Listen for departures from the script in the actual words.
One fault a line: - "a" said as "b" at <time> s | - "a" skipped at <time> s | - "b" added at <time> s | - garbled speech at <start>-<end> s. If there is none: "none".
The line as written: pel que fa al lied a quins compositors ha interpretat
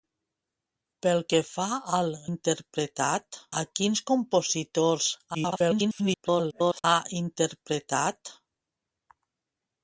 - "lied" said as "interpretat" at 2.3 s
- garbled speech at 5.3-6.8 s